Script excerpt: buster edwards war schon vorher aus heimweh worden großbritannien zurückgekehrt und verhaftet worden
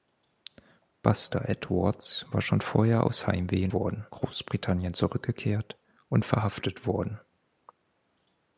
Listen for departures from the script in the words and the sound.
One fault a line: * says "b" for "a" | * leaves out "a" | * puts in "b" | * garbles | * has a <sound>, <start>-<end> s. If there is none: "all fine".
all fine